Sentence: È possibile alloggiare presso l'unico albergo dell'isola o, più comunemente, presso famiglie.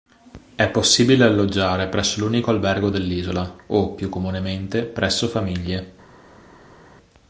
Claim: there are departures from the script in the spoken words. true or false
false